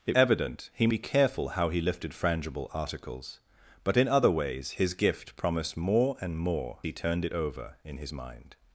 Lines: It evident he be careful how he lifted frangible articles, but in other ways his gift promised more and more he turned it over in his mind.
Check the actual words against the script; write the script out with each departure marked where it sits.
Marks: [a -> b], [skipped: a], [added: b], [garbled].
It evident he be careful how he lifted frangible articles, but in other ways his gift promised more and more he turned it over in his mind.